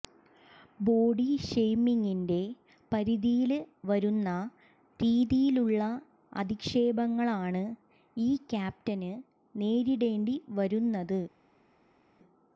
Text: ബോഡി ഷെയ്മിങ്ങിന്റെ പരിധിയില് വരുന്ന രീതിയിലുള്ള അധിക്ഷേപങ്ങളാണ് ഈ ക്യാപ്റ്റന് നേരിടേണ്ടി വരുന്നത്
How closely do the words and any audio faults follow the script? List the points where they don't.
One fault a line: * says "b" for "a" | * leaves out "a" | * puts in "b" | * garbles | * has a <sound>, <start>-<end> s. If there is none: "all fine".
all fine